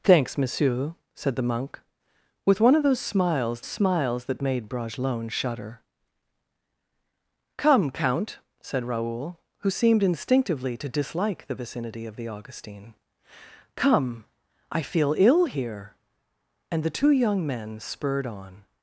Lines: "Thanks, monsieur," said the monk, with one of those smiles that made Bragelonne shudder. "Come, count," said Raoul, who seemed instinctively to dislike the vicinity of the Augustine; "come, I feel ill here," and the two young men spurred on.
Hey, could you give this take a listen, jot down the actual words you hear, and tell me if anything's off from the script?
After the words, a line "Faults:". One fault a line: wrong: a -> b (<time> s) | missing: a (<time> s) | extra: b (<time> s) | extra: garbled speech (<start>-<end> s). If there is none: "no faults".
"Thanks, monsieur," said the monk, with one of those smiles smiles that made Bragelonne shudder. "Come, count," said Raoul, who seemed instinctively to dislike the vicinity of the Augustine; "come, I feel ill here," and the two young men spurred on.
Faults:
extra: smiles (3.6 s)